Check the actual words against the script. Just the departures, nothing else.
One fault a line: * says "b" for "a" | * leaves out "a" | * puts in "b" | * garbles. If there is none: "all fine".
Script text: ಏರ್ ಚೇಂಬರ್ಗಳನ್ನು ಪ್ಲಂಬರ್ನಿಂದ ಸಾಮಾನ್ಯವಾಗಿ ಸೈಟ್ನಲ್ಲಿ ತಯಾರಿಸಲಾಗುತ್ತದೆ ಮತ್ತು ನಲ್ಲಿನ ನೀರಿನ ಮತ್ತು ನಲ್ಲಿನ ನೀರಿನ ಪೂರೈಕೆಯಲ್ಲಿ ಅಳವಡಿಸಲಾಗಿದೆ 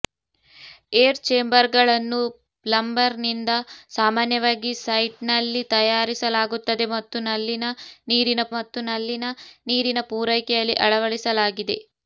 all fine